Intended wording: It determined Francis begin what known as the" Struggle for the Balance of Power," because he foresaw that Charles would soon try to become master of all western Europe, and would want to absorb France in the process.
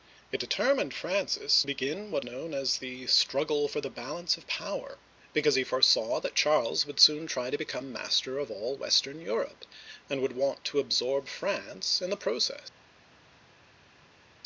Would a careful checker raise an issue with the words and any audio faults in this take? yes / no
no